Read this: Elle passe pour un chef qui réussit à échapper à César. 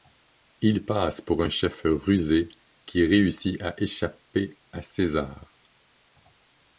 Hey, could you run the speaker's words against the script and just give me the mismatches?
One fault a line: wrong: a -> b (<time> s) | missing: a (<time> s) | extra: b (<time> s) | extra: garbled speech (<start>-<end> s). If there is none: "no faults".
wrong: Elle -> Il (0.6 s)
extra: rusé (1.8 s)